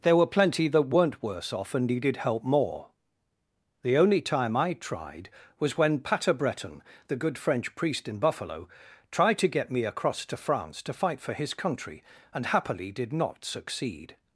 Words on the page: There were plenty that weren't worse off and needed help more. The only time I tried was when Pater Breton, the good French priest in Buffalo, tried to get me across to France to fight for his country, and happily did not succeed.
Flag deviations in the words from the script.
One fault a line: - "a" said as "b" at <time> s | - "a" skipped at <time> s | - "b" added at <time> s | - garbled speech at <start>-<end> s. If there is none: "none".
none